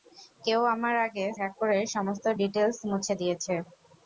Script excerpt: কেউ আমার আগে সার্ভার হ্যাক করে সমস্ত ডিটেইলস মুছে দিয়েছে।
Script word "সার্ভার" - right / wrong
wrong